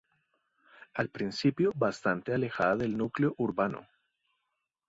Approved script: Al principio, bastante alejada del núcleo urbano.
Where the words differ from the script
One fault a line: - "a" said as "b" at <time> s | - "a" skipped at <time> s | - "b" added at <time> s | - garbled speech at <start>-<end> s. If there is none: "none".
none